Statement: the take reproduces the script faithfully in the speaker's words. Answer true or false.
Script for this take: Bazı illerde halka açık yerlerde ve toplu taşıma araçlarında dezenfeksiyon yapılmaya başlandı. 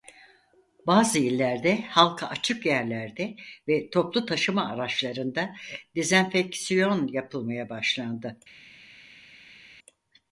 true